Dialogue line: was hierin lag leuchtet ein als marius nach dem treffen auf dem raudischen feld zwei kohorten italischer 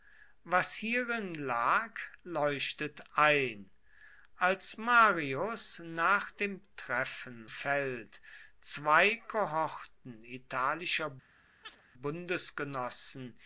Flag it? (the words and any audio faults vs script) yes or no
yes